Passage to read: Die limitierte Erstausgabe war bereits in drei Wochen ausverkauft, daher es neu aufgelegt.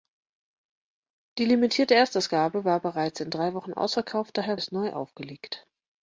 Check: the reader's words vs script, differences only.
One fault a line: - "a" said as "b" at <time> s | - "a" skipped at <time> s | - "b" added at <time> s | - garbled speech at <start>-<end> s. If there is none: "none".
none